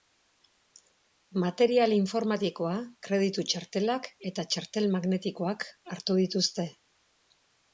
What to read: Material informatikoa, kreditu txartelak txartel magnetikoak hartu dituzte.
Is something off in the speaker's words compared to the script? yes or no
yes